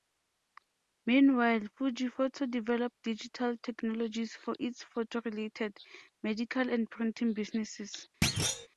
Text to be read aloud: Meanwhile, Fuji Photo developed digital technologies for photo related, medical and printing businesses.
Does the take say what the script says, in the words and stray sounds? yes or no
no